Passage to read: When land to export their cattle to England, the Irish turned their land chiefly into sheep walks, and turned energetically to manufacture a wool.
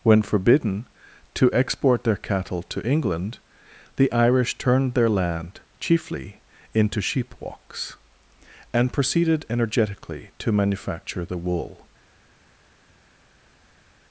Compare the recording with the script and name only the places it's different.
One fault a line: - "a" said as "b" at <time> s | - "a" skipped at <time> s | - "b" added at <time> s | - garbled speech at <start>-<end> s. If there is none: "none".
- "land" said as "forbidden" at 0.2 s
- "turned" said as "proceeded" at 8.9 s
- "a" said as "the" at 11.3 s